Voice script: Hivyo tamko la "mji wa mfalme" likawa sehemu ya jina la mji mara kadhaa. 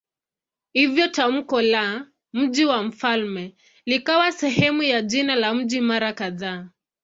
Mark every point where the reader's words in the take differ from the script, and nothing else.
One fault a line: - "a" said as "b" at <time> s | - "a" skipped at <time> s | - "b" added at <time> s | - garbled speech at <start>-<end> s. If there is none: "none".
none